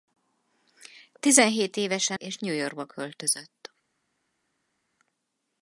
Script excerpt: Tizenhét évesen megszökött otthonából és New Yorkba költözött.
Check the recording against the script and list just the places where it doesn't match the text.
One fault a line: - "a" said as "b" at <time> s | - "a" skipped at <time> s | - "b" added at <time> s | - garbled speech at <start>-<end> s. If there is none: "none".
- "megszökött otthonából" skipped at 2.2 s